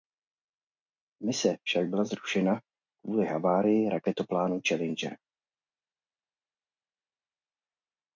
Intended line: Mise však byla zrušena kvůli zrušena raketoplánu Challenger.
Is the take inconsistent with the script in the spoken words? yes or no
yes